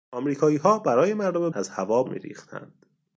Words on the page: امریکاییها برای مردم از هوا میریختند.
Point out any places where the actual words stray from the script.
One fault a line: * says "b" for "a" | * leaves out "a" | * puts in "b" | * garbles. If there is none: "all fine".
all fine